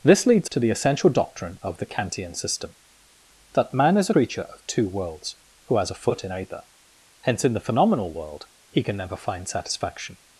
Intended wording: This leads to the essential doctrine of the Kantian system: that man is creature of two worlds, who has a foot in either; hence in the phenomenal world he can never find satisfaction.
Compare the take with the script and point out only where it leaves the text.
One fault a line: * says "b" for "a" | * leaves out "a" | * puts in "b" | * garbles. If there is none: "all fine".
all fine